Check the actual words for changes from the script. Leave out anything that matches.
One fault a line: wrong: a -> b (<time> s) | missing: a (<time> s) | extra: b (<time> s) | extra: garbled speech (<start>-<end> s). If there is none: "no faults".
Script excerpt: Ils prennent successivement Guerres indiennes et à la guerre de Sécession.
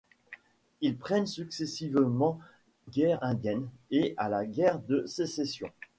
no faults